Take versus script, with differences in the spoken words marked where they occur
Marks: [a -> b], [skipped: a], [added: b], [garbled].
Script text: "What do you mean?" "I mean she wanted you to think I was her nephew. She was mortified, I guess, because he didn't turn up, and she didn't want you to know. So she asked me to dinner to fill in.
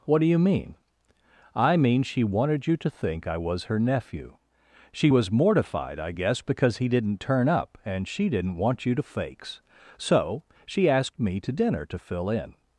"What do you mean?" "I mean she wanted you to think I was her nephew. She was mortified, I guess, because he didn't turn up, and she didn't want you to [know. -> fakes] So she asked me to dinner to fill in.